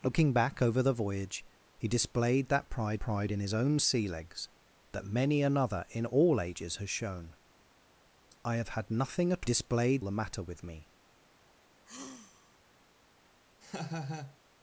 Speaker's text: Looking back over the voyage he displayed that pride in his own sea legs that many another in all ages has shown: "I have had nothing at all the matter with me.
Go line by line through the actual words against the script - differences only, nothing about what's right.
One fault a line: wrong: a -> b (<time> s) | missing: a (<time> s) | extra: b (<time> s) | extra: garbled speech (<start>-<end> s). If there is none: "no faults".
extra: pride (3.0 s)
wrong: all -> displayed (9.4 s)